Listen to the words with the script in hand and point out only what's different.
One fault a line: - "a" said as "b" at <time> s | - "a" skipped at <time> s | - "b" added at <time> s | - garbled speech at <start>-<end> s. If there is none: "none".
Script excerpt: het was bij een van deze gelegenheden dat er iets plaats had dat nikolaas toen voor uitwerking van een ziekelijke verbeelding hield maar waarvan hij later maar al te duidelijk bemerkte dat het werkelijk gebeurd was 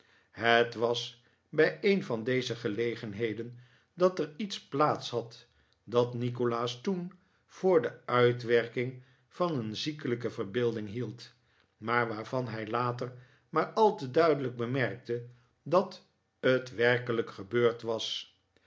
- "de" added at 7.8 s